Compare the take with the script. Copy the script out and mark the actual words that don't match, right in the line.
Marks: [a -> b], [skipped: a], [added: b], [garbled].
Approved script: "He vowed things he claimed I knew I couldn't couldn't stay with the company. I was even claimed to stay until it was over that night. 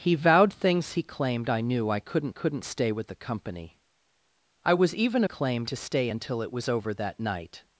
"He vowed things he claimed I knew I couldn't couldn't stay with the company. I was even claimed to stay until it was over that night.